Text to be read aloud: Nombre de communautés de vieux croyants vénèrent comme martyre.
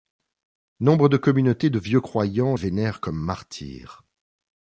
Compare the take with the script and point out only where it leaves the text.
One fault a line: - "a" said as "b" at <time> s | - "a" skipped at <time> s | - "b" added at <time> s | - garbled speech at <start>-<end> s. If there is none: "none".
none